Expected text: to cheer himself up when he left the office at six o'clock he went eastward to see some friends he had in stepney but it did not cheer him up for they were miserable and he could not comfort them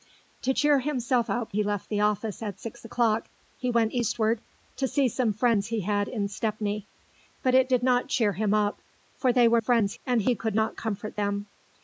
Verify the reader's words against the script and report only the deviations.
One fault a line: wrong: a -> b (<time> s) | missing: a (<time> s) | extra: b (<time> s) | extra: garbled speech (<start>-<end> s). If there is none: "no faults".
missing: when (1.5 s)
wrong: miserable -> friends (9.6 s)